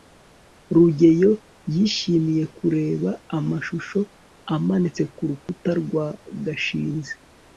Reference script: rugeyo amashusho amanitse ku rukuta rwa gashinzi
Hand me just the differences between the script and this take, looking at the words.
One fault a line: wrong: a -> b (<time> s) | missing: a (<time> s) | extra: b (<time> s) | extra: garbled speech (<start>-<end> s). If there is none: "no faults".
extra: yishimiye kureba (1.7 s)